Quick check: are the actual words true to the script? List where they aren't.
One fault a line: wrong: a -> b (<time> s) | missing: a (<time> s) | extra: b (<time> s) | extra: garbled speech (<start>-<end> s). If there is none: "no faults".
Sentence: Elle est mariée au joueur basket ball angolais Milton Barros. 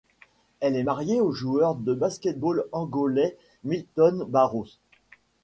extra: de (1.7 s)